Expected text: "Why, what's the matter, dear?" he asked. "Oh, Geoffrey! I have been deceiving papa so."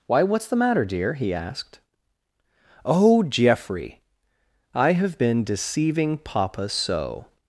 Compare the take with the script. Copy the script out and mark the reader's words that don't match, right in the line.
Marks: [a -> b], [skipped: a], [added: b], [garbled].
"Why, what's the matter, dear?" he asked. "Oh, Geoffrey! I have been deceiving papa so."